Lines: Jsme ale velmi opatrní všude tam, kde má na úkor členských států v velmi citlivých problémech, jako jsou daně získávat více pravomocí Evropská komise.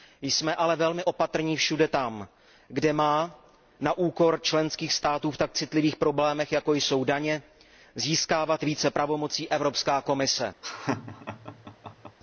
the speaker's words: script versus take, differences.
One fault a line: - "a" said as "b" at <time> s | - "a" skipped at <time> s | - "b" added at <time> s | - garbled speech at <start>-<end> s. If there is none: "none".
- "velmi" said as "tak" at 5.4 s